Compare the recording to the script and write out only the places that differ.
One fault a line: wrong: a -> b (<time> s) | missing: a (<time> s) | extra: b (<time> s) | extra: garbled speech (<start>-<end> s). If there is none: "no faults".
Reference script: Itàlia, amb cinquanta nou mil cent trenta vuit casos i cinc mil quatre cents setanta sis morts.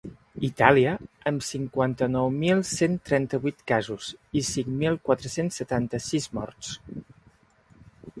no faults